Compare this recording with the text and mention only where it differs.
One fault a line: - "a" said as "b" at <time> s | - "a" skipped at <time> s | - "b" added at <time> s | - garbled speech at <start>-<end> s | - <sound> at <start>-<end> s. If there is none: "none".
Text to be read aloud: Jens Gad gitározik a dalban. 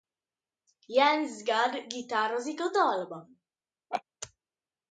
- laugh at 3.9-4.0 s